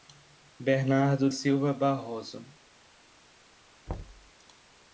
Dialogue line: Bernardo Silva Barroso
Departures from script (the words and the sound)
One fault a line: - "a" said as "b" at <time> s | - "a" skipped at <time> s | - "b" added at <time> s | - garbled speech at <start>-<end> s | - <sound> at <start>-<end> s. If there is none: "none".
- thud at 3.9-4.3 s